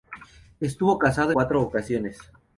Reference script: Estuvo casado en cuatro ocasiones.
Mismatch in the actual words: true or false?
true